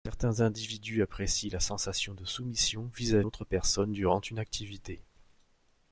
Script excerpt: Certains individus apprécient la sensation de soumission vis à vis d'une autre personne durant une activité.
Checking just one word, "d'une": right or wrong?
wrong